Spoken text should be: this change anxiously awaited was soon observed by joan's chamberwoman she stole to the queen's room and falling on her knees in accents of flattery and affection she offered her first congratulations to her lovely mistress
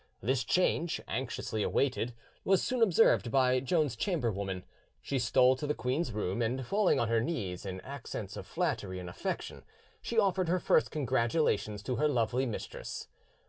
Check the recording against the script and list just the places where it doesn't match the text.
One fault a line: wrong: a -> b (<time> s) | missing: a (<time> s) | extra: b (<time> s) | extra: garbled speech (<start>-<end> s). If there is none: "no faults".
no faults